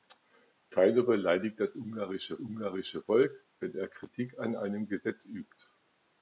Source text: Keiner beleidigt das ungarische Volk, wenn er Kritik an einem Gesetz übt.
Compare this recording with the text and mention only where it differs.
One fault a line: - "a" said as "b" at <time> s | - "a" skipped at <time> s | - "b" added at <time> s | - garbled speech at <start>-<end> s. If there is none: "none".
- "ungarische" added at 2.4 s